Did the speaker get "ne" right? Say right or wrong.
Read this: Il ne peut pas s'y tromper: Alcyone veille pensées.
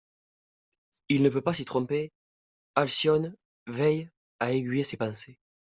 right